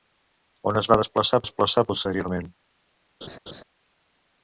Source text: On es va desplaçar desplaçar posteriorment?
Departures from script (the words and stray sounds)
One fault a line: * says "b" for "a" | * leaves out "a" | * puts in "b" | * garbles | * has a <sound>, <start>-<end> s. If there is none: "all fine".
* has a laugh, 3.2-3.6 s